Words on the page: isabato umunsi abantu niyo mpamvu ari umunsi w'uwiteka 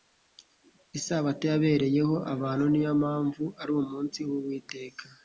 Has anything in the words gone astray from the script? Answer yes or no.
yes